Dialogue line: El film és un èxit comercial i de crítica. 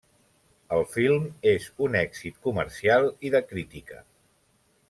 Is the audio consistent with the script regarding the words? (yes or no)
yes